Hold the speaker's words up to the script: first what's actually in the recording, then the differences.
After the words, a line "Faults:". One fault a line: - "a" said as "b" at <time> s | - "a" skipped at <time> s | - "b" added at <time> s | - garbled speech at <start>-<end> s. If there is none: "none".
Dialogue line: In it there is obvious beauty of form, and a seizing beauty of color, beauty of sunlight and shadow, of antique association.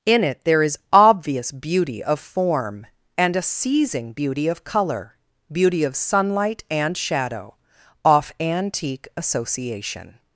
In it there is obvious beauty of form, and a seizing beauty of color, beauty of sunlight and shadow, off antique association.
Faults:
- "of" said as "off" at 8.0 s